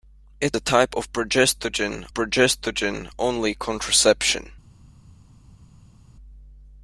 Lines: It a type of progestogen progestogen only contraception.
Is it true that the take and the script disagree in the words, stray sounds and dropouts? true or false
false